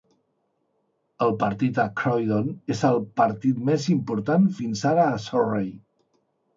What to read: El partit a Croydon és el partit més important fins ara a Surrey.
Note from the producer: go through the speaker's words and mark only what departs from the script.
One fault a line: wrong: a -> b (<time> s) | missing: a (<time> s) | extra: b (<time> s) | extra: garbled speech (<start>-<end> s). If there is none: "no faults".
no faults